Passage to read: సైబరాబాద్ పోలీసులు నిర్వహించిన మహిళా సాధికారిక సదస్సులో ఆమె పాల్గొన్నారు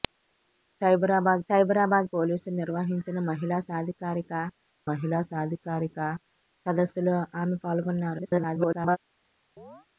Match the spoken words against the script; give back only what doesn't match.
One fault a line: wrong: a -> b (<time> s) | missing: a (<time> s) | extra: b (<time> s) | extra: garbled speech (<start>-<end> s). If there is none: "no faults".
extra: సైబరాబాద్ (1.5 s)
extra: మహిళా సాధికారిక (4.9 s)
extra: garbled speech (8.2-9.0 s)